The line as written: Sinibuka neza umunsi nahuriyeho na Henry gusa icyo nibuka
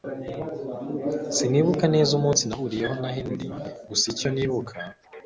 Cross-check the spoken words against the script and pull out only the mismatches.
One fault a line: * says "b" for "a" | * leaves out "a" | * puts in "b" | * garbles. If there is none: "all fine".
all fine